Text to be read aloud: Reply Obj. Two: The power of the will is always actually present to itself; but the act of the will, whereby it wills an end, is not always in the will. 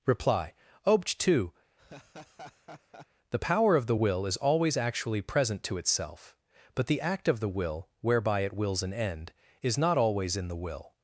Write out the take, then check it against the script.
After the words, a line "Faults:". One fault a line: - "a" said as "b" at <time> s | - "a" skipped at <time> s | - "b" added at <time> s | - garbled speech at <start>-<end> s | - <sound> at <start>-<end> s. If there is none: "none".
Reply Obj. Two: The power of the will is always actually present to itself; but the act of the will, whereby it wills an end, is not always in the will.
Faults:
- laugh at 1.8-3.1 s